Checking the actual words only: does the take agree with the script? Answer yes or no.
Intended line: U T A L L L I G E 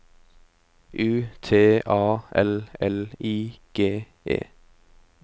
no